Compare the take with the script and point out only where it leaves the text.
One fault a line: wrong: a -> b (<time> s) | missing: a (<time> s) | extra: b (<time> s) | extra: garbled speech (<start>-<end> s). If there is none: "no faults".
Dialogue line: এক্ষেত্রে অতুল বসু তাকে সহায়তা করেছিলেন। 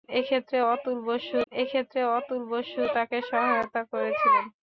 extra: এক্ষেত্রে অতুল বসু (1.5 s)